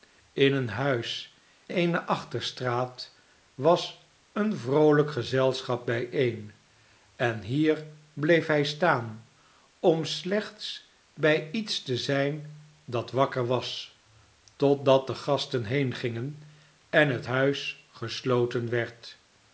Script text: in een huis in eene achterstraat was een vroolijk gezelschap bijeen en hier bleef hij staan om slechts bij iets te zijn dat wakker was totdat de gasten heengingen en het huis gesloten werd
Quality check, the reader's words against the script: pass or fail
fail